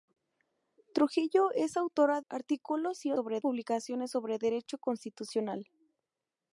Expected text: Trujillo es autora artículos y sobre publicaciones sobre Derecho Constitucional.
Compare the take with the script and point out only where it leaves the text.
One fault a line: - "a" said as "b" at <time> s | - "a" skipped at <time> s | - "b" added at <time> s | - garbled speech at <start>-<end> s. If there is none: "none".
none